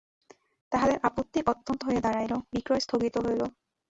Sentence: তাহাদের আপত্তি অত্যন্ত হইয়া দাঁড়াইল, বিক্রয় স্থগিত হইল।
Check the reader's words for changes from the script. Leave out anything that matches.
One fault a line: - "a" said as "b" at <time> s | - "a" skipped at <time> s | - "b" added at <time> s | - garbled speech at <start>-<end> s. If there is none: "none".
none